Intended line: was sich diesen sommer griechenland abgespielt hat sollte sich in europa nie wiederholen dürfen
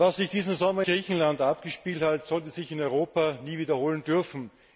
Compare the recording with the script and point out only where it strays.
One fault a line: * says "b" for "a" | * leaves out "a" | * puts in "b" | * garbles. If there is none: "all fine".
all fine